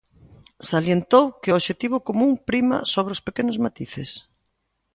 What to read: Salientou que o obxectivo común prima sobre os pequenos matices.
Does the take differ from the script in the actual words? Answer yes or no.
no